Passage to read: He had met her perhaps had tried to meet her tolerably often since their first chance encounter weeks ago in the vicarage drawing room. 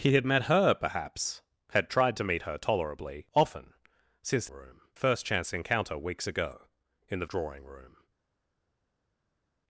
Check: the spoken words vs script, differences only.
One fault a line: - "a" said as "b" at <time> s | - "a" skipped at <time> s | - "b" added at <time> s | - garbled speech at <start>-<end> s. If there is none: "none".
- "their" said as "room" at 4.5 s
- "vicarage" skipped at 7.3 s